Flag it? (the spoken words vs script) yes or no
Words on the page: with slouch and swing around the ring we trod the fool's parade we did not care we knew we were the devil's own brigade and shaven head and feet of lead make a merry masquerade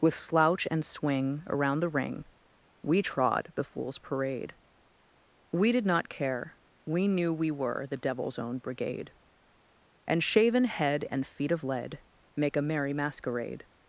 no